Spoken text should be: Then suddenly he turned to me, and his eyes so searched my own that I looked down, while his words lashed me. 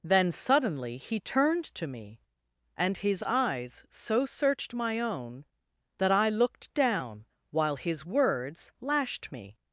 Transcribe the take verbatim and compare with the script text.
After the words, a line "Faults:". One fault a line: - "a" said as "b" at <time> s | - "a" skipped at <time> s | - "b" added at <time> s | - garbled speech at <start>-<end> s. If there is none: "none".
Then suddenly he turned to me, and his eyes so searched my own that I looked down, while his words lashed me.
Faults:
none